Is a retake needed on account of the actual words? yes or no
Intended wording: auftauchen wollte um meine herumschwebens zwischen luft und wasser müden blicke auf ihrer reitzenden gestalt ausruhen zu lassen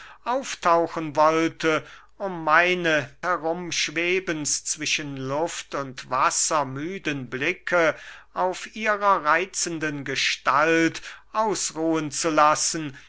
no